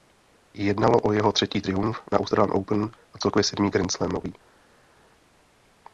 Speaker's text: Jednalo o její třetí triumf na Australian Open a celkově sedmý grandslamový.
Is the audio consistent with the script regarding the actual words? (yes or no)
no